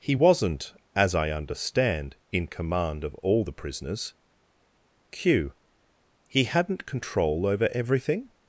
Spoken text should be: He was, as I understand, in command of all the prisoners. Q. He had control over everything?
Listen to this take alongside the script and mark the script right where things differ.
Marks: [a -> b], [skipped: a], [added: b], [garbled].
He [was, -> wasn't] as I understand, in command of all the prisoners. Q. He [had -> hadn't] control over everything?